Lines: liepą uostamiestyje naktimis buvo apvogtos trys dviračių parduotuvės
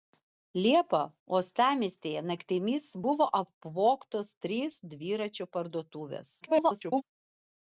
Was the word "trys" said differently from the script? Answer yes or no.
no